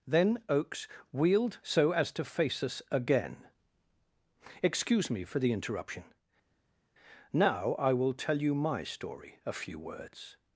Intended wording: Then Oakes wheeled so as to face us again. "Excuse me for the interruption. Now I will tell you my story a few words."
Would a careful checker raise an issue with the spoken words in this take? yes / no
no